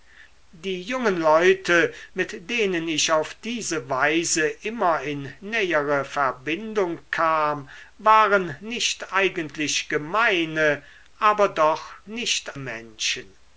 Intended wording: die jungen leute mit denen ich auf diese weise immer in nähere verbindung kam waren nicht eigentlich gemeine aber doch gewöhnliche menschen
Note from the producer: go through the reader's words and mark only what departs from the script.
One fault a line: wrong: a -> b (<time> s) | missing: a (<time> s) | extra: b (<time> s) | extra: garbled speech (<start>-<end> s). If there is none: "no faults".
wrong: gewöhnliche -> nicht (12.1 s)